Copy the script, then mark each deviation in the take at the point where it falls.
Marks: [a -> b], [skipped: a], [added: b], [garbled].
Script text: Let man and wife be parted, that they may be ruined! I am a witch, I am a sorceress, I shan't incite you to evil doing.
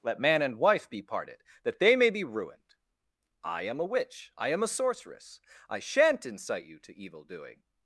Let man and wife be parted, that they may be ruined! I am a witch, I am a sorceress, I shan't incite you to evil doing.